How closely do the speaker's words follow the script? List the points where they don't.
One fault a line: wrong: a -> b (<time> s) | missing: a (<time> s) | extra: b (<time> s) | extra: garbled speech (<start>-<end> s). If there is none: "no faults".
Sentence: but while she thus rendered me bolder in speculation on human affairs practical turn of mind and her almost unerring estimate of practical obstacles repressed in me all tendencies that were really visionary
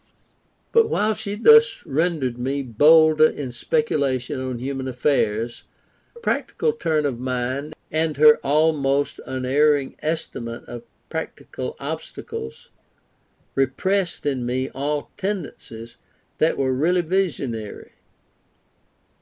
no faults